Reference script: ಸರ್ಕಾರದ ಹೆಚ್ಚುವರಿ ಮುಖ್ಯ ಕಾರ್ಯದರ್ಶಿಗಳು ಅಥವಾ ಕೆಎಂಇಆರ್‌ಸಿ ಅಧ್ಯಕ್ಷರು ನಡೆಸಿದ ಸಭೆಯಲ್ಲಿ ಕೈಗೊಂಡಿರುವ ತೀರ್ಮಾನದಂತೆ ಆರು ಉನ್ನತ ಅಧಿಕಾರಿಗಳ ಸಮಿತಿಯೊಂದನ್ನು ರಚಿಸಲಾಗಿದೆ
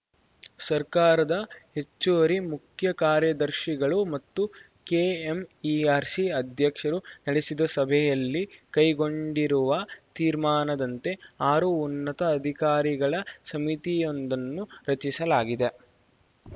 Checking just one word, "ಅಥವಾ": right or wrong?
wrong